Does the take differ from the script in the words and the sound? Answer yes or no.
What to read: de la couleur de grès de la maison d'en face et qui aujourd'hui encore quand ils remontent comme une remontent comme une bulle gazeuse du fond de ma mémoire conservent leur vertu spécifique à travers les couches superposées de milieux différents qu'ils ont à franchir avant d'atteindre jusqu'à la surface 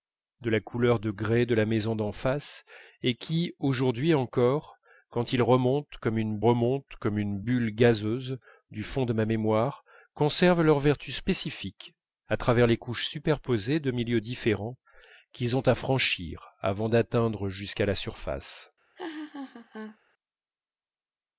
yes